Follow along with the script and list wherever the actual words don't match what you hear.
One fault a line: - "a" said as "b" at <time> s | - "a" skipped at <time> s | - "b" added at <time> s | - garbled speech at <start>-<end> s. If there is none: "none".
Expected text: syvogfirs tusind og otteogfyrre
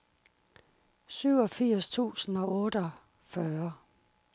none